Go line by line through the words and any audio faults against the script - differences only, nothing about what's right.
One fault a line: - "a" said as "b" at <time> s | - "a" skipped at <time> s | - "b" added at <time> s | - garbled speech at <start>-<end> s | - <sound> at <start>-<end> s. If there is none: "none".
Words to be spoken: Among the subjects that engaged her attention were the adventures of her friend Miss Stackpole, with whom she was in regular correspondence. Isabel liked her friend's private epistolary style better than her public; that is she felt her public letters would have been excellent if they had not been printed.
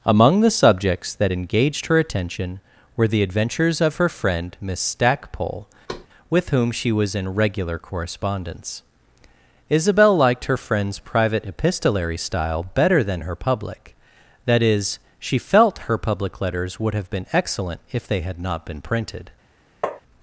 - thud at 5.9-6.1 s
- tap at 19.8-20.0 s